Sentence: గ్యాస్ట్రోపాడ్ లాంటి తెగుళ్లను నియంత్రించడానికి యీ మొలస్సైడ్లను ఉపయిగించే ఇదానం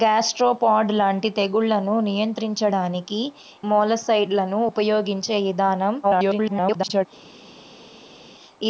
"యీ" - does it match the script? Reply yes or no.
no